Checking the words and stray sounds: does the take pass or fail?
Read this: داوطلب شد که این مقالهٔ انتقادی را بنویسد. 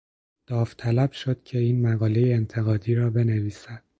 pass